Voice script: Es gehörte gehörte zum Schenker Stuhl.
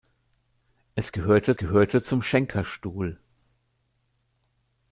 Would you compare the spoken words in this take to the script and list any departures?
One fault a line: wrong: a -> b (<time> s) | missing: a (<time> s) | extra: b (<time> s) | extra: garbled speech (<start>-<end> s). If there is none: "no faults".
no faults